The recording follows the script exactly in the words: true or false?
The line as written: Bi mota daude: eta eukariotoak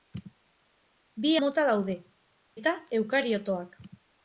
true